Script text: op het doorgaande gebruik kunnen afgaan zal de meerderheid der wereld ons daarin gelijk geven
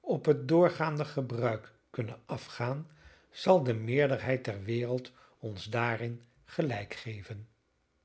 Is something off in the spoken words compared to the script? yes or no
no